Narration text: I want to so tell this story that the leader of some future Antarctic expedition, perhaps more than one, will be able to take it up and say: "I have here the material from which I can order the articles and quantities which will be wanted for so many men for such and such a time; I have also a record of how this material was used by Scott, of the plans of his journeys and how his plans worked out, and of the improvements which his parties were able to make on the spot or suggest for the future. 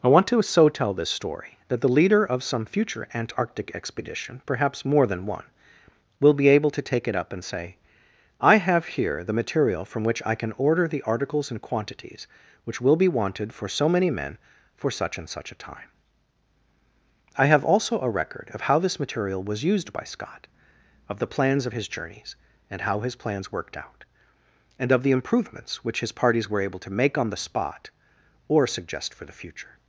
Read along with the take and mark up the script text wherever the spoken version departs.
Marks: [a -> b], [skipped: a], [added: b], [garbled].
I want to so tell this story that the leader of some future Antarctic expedition, perhaps more than one, will be able to take it up and say: "I have here the material from which I can order the articles and quantities which will be wanted for so many men for such and such a time; I have also a record of how this material was used by Scott, of the plans of his journeys and how his plans worked out, and of the improvements which his parties were able to make on the spot or suggest for the future.